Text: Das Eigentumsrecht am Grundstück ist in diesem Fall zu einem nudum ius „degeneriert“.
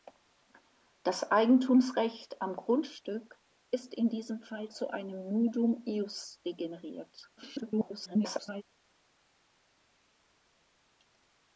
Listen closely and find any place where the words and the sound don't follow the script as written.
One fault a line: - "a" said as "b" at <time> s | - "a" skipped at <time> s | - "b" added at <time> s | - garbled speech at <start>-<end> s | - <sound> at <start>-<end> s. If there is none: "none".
- garbled speech at 7.4-8.6 s